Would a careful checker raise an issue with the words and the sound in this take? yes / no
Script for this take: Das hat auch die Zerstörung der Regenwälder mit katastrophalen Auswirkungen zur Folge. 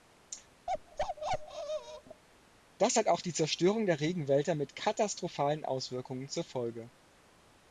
yes